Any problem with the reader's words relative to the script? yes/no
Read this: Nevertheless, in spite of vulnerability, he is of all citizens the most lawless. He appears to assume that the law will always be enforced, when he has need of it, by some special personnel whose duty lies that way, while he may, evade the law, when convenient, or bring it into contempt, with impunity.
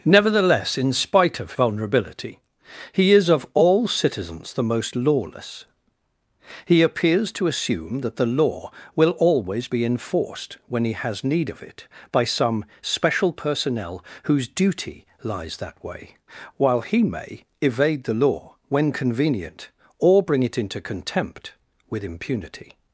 no